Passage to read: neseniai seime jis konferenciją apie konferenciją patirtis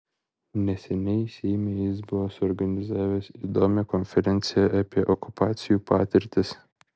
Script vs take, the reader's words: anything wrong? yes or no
yes